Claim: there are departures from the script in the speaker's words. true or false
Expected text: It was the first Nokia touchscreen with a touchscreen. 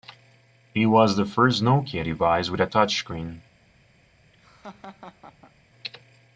true